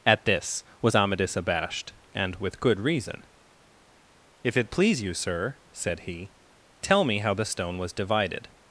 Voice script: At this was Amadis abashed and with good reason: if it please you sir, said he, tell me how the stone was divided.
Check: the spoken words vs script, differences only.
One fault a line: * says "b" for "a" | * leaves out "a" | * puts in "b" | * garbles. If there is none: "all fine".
all fine